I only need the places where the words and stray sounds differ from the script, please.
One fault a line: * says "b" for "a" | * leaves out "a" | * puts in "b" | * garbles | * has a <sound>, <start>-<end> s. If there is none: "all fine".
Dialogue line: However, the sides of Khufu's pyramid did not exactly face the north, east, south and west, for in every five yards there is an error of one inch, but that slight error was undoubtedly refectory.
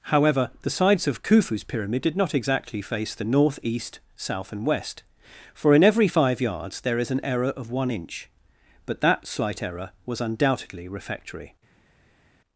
all fine